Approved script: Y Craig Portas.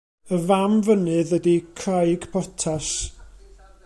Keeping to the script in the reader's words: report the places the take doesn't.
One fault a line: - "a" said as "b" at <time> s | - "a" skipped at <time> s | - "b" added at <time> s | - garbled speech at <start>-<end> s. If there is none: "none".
- "fam fynydd ydy" added at 0.5 s